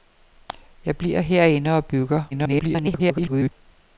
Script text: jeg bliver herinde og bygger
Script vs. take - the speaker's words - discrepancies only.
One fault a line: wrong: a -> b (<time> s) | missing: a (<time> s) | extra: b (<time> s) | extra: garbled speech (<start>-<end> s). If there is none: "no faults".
extra: garbled speech (2.3-3.5 s)